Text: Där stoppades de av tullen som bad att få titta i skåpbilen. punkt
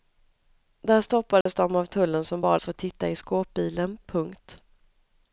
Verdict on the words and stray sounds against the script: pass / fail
fail